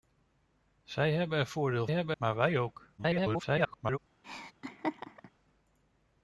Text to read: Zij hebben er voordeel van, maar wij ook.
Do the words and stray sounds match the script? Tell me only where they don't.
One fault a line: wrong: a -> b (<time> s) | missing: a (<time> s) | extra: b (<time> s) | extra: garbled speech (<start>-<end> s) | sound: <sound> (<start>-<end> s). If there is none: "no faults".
wrong: van -> hebben (1.9 s)
extra: garbled speech (3.0-4.0 s)
sound: laugh (4.2-5.3 s)